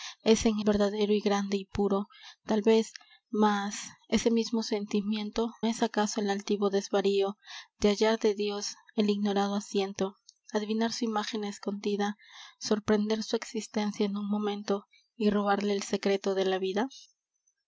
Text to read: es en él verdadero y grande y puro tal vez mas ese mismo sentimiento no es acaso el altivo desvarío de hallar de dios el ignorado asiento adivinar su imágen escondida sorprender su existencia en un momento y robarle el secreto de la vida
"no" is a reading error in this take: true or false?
true